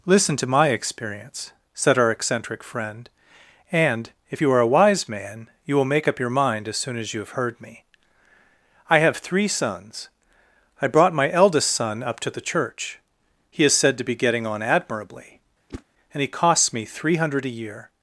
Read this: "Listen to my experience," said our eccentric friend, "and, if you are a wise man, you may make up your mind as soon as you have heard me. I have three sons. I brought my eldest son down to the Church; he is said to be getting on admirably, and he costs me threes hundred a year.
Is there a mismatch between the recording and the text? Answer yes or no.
yes